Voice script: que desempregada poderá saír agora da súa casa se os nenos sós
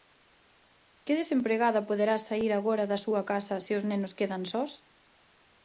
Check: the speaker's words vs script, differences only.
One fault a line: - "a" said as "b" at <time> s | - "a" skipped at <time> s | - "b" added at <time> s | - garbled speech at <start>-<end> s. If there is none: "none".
- "quedan" added at 4.2 s